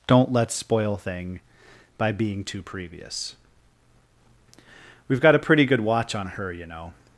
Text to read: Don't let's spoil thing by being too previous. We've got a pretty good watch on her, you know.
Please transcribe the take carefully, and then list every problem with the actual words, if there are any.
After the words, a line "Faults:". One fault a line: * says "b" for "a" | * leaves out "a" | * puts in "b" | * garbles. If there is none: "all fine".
Don't let's spoil thing by being too previous. We've got a pretty good watch on her, you know.
Faults:
all fine